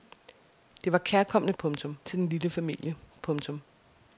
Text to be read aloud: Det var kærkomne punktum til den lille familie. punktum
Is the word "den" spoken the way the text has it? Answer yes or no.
yes